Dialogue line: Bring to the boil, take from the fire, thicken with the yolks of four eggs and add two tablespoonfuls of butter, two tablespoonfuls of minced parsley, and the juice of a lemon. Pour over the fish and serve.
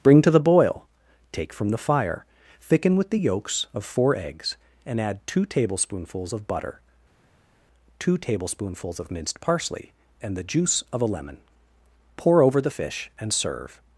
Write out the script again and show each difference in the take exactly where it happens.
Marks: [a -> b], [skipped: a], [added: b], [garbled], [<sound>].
Bring to the boil, take from the fire, thicken with the yolks of four eggs and add two tablespoonfuls of butter, two tablespoonfuls of minced parsley, and the juice of a lemon. Pour over the fish and serve.